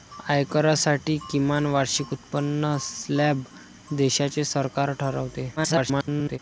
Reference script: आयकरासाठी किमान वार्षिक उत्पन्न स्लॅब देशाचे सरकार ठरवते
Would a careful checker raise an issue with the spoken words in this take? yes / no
yes